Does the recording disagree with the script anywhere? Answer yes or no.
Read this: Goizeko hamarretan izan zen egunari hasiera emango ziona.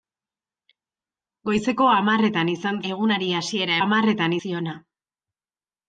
yes